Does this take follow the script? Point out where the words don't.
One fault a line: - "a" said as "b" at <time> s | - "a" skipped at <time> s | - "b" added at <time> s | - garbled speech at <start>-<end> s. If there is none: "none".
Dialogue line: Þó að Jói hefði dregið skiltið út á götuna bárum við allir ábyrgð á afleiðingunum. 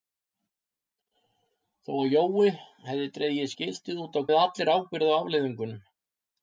- "götuna bárum" skipped at 4.2 s